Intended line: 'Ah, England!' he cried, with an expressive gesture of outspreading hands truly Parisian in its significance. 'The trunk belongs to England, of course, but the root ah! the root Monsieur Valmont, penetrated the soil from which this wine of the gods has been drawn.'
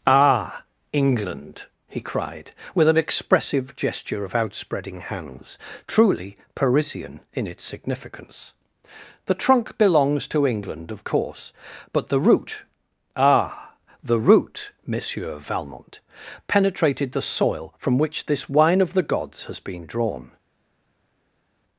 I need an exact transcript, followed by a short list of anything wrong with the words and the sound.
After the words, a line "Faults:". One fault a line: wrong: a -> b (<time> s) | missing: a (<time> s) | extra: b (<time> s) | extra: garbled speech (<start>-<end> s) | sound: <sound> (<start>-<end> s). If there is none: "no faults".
'Ah, England!' he cried, with an expressive gesture of outspreading hands truly Parisian in its significance. 'The trunk belongs to England, of course, but the root ah! the root Monsieur Valmont, penetrated the soil from which this wine of the gods has been drawn.'
Faults:
no faults